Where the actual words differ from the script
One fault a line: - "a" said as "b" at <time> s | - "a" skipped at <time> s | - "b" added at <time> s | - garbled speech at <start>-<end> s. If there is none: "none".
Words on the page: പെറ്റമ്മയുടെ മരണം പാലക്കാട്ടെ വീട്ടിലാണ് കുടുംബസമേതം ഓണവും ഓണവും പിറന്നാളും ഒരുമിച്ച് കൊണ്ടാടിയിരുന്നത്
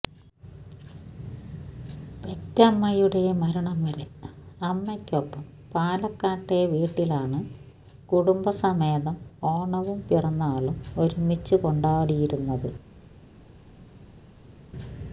- "വരെ അമ്മയ്ക്കൊപ്പം" added at 3.8 s
- "ഓണവും" skipped at 10.0 s